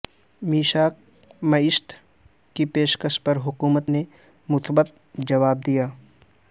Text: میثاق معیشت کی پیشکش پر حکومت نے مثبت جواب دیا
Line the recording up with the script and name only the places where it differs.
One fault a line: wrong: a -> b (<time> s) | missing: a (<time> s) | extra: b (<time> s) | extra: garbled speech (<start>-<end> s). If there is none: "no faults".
no faults